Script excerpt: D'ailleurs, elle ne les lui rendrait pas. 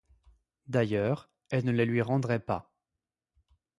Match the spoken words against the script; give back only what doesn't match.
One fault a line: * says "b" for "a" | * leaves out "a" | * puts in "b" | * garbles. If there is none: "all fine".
all fine